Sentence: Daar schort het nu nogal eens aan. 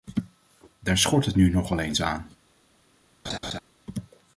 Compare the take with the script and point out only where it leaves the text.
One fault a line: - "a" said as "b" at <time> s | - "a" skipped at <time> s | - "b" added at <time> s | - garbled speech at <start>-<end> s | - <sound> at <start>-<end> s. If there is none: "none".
- laugh at 3.2-3.6 s